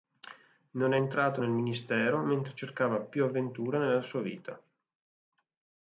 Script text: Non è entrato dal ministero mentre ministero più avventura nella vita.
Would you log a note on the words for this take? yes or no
yes